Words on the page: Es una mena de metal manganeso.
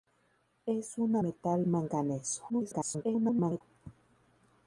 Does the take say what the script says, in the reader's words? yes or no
no